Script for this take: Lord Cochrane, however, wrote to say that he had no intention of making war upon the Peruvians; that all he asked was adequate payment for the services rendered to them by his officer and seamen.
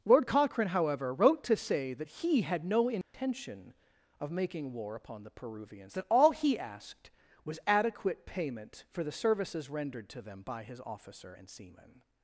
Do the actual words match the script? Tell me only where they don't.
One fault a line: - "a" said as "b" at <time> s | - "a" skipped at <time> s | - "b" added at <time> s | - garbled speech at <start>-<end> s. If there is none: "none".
none